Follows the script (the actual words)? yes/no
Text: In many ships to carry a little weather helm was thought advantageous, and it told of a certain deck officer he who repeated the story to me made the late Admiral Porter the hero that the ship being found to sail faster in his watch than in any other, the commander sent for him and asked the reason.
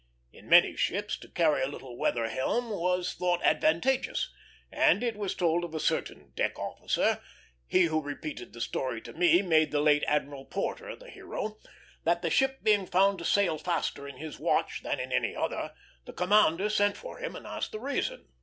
no